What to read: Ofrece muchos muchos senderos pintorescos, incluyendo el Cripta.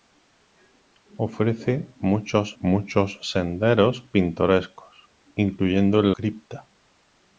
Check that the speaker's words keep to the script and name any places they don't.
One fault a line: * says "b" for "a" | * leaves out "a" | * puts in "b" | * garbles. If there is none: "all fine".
all fine